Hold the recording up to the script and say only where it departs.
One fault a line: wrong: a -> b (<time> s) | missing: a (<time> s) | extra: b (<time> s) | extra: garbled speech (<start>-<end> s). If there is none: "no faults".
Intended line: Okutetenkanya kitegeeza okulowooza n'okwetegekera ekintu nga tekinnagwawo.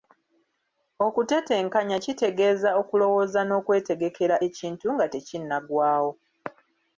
no faults